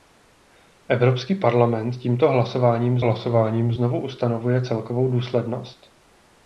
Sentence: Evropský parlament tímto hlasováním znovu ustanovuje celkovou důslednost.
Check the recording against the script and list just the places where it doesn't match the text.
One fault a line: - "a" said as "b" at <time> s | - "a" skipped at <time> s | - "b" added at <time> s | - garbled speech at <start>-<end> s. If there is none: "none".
- "hlasováním" added at 3.0 s